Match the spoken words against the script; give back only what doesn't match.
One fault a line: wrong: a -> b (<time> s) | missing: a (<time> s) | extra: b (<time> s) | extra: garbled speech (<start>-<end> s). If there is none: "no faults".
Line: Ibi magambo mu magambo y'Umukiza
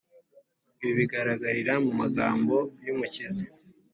wrong: magambo -> bigaragarira (1.0 s)